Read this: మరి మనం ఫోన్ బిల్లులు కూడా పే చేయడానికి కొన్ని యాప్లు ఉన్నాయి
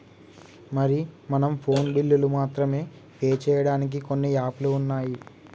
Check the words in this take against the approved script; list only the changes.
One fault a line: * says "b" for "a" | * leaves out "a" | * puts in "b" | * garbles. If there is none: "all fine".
* says "మాత్రమే" for "కూడా"